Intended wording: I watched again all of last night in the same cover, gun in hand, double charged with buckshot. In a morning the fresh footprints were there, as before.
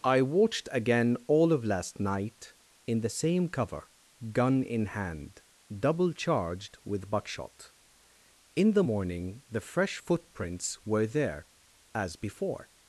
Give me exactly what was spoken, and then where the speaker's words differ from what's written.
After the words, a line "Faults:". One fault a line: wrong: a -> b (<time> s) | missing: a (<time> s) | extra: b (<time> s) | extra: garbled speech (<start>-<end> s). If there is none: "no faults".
I watched again all of last night in the same cover, gun in hand, double charged with buckshot. In the morning the fresh footprints were there, as before.
Faults:
wrong: a -> the (8.7 s)